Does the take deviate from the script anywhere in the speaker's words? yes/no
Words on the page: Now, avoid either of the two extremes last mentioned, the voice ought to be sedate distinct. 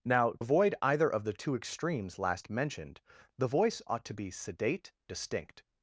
no